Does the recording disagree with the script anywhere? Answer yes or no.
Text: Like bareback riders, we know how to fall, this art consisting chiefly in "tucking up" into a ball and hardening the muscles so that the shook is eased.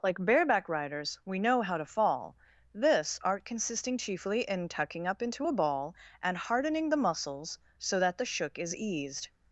no